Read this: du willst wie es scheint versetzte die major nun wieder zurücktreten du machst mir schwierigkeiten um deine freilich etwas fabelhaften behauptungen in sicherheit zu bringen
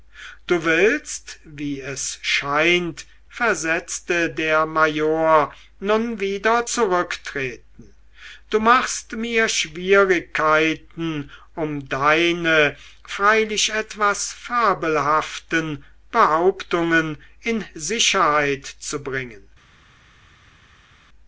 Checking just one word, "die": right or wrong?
wrong